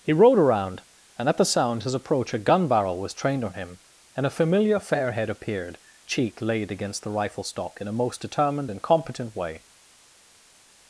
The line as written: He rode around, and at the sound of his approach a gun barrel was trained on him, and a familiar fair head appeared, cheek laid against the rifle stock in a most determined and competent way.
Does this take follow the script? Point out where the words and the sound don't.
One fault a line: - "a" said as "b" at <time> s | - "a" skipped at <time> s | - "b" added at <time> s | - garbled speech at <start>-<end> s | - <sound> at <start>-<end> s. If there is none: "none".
- "of" skipped at 1.8 s